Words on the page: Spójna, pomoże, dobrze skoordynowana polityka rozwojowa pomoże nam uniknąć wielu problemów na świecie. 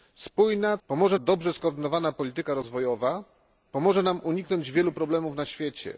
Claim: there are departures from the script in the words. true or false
false